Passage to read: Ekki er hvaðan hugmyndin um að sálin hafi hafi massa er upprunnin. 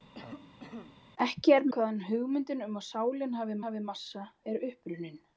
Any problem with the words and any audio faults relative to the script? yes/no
yes